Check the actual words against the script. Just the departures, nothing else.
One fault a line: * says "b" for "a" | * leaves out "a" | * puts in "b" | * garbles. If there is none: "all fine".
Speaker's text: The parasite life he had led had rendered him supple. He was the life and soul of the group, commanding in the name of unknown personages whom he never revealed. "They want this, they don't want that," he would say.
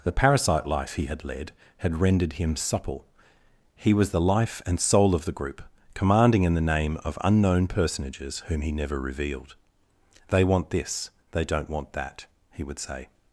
all fine